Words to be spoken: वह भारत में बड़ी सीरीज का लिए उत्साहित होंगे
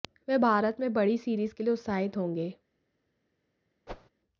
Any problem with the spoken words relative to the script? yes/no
yes